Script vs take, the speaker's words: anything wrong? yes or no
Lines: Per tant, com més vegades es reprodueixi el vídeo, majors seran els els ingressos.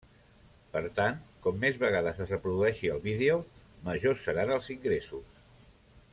yes